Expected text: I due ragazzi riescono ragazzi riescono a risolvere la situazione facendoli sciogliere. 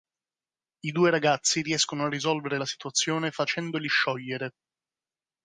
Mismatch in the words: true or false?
true